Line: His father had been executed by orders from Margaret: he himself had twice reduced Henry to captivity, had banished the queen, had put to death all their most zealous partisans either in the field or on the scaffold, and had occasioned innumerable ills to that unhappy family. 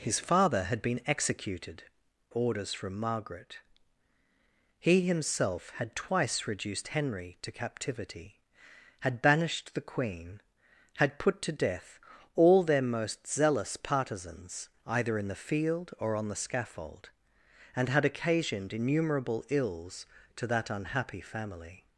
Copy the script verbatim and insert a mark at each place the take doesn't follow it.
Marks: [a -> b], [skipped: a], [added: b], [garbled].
His father had been executed [skipped: by] orders from Margaret: he himself had twice reduced Henry to captivity, had banished the queen, had put to death all their most zealous partisans either in the field or on the scaffold, and had occasioned innumerable ills to that unhappy family.